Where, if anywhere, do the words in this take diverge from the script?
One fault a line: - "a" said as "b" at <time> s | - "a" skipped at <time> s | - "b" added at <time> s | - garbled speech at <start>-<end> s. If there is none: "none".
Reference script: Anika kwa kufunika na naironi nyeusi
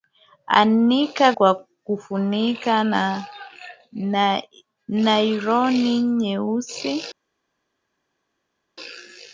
none